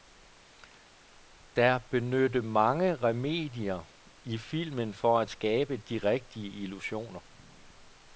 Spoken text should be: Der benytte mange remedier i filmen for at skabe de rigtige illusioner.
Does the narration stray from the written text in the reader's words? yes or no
no